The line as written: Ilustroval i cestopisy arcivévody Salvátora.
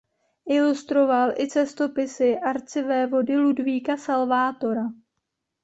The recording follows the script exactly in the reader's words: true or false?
false